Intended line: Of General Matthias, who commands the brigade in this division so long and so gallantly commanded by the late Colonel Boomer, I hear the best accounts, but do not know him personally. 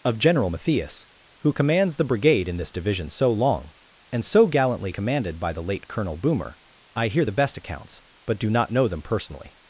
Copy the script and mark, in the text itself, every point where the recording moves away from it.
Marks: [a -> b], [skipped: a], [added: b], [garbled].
Of General Matthias, who commands the brigade in this division so long and so gallantly commanded by the late Colonel Boomer, I hear the best accounts, but do not know [him -> them] personally.